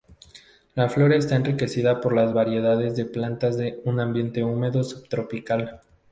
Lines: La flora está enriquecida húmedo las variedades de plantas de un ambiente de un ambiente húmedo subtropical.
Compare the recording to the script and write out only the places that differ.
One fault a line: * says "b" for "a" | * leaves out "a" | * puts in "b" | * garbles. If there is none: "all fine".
* says "por" for "húmedo"
* leaves out "de un ambiente"